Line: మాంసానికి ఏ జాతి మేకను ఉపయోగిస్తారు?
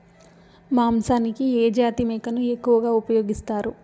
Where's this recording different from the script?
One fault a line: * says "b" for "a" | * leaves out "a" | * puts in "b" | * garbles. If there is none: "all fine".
* puts in "ఎక్కువగా"